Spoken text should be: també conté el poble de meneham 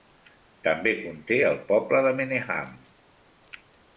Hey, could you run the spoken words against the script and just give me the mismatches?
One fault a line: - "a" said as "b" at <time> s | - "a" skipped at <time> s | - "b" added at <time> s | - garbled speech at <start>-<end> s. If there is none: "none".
none